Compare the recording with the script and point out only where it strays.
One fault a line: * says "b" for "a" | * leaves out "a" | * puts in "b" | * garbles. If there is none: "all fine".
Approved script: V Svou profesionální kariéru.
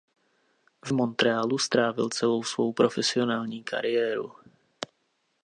* puts in "Montrealu strávil celou"